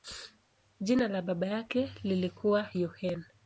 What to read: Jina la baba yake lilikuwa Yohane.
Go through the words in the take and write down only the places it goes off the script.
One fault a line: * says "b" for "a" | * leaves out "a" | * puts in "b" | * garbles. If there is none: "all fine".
all fine